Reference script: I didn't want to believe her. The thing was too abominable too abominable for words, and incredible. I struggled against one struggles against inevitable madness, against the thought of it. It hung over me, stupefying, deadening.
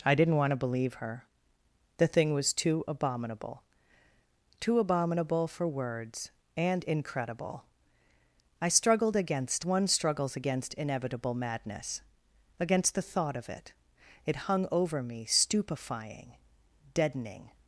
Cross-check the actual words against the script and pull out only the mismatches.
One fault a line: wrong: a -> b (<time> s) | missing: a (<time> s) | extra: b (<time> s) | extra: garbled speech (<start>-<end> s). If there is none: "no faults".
no faults